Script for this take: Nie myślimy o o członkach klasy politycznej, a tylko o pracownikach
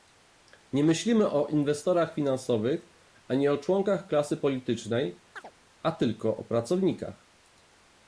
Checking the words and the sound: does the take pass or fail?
fail